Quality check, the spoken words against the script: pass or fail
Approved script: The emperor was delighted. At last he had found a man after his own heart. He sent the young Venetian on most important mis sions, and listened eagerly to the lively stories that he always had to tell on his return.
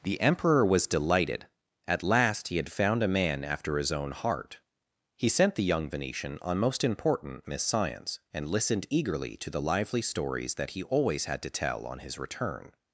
fail